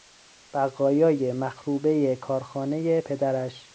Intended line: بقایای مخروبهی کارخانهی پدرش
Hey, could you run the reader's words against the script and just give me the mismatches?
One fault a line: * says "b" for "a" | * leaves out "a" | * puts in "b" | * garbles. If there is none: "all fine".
all fine